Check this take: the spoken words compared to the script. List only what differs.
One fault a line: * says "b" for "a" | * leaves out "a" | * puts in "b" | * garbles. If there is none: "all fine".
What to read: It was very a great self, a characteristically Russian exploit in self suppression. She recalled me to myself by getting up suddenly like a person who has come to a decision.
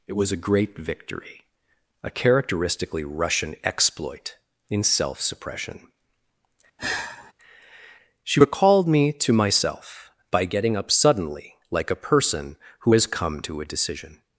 * leaves out "very"
* says "victory" for "self"